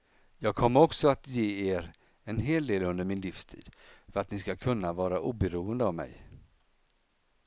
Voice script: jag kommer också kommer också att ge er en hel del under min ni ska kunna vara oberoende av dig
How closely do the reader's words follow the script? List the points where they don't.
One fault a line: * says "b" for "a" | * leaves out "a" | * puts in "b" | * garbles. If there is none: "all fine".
* leaves out "kommer också"
* puts in "livstid för att"
* says "mig" for "dig"